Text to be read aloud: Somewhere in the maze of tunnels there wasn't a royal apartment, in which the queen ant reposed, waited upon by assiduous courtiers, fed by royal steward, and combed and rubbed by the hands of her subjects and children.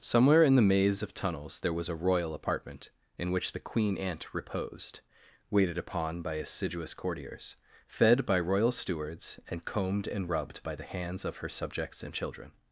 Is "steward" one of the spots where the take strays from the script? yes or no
yes